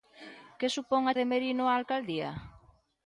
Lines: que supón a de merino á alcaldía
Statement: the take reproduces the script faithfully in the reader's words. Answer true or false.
true